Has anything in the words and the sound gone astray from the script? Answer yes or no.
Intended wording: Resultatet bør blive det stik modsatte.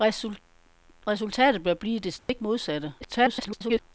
yes